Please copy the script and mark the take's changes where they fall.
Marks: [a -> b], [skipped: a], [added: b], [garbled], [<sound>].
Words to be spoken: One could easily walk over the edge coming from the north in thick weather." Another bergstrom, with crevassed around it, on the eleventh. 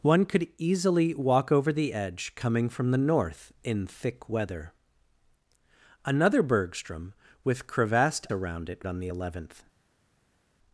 One could easily walk over the edge coming from the north in thick weather." Another bergstrom, with crevassed around it, on the eleventh.